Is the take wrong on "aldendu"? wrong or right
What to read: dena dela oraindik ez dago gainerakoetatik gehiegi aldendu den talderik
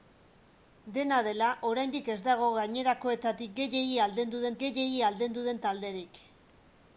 right